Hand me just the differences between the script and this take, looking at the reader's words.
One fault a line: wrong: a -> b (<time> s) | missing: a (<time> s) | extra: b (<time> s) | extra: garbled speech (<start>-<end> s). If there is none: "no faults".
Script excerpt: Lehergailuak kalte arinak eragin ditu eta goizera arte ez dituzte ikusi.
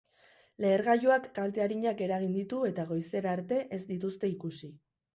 no faults